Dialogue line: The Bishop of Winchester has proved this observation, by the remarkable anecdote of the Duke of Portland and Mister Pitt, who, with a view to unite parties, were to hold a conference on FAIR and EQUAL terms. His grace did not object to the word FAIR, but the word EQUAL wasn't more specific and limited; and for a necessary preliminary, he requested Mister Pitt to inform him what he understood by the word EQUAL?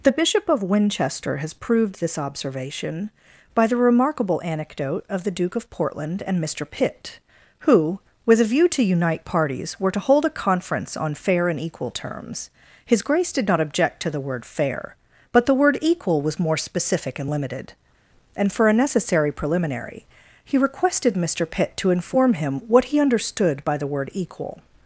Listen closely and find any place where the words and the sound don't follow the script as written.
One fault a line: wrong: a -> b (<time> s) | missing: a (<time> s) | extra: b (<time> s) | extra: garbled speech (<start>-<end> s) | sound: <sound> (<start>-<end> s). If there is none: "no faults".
wrong: wasn't -> was (16.2 s)